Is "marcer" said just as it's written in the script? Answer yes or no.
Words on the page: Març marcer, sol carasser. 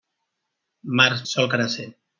no